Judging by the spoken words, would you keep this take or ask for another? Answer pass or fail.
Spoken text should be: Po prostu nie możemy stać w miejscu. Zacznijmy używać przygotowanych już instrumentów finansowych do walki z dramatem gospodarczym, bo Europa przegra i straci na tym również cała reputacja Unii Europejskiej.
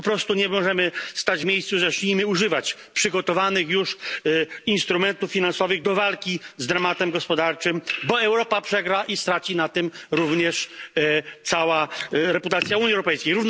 pass